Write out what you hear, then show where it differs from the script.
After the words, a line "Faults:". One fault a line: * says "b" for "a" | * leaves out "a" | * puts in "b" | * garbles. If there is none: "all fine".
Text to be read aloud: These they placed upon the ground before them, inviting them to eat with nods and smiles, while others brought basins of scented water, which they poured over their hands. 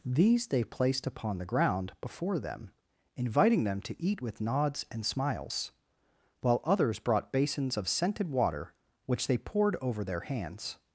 These they placed upon the ground before them, inviting them to eat with nods and smiles, while others brought basins of scented water, which they poured over their hands.
Faults:
all fine